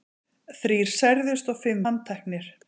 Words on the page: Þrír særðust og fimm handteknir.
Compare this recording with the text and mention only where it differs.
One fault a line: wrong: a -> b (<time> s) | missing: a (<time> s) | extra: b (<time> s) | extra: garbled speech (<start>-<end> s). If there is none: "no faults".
no faults